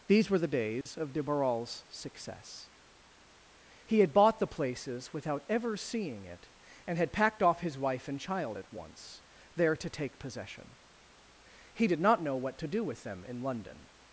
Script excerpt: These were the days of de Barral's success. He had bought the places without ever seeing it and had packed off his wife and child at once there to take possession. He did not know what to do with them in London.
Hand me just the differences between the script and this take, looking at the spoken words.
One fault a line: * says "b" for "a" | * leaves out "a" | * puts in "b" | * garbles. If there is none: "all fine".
all fine